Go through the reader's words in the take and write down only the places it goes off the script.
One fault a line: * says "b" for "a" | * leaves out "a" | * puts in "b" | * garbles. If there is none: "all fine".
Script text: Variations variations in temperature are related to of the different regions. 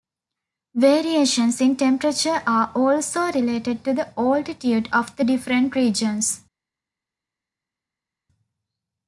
* leaves out "variations"
* puts in "also"
* puts in "the altitude"